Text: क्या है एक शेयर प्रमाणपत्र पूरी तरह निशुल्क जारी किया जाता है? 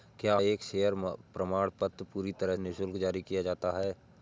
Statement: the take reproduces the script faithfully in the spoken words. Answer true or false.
true